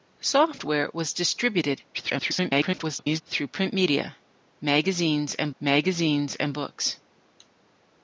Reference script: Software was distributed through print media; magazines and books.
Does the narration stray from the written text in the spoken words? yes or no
yes